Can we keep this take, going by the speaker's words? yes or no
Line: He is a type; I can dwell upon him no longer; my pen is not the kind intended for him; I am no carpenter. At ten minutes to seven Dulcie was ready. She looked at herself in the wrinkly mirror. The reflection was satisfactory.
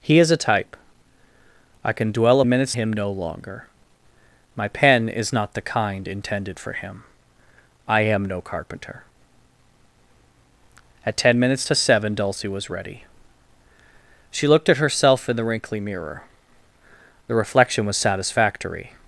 no